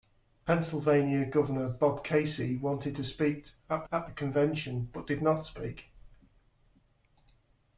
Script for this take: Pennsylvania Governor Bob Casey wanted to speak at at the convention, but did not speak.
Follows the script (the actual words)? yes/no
yes